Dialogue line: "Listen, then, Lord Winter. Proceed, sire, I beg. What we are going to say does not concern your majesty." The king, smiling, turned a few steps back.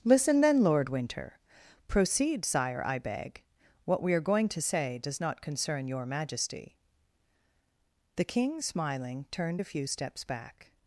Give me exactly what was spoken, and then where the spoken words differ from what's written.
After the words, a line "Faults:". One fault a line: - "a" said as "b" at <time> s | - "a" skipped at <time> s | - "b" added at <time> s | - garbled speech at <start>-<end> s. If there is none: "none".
"Listen, then, Lord Winter. Proceed, sire, I beg. What we are going to say does not concern your majesty." The king, smiling, turned a few steps back.
Faults:
none